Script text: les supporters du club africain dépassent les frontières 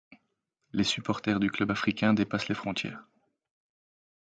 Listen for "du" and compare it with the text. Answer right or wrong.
right